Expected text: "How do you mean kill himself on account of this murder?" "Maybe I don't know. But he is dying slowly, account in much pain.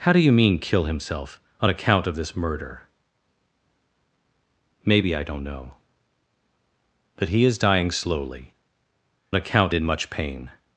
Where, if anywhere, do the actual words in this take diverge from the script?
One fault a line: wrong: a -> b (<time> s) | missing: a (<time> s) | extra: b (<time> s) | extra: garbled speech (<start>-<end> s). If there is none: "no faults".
no faults